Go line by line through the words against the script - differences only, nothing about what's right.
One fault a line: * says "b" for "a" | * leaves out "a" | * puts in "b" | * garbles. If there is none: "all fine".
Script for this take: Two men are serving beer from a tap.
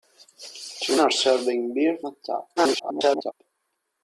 * leaves out "men"
* leaves out "from"
* garbles